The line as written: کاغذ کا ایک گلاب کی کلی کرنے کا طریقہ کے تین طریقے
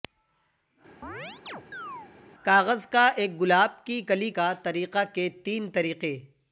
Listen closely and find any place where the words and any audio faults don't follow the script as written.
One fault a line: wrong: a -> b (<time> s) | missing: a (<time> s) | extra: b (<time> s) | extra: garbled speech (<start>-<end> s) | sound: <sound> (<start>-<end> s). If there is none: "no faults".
sound: chirp (1.0-2.1 s)
missing: کرنے (4.3 s)